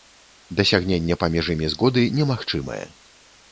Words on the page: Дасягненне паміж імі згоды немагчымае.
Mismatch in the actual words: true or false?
false